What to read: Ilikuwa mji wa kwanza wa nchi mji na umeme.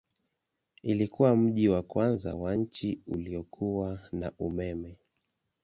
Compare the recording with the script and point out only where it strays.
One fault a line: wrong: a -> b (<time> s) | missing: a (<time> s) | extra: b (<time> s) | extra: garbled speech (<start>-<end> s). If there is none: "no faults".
wrong: mji -> uliokuwa (3.1 s)